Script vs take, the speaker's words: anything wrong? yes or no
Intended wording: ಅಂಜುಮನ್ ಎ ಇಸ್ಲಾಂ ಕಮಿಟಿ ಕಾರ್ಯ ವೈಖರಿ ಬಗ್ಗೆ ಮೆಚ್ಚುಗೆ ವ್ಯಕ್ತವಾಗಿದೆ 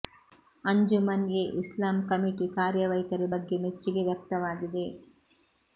no